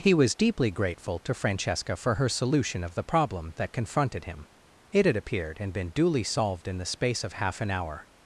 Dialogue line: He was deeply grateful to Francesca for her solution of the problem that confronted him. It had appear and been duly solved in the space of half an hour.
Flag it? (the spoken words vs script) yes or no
yes